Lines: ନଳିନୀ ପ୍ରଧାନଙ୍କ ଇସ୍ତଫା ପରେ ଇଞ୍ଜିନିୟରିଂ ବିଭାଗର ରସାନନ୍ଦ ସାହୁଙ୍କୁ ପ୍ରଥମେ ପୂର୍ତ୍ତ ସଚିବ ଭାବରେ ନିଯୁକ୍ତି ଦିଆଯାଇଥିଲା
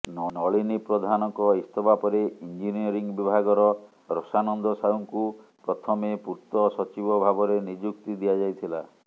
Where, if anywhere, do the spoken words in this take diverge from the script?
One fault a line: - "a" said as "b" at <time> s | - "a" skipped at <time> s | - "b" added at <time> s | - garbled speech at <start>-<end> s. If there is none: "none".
none